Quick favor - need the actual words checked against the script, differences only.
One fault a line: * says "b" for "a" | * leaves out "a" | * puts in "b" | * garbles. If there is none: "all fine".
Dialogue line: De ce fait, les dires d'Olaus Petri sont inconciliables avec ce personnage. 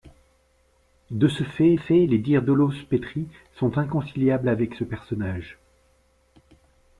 * puts in "fait"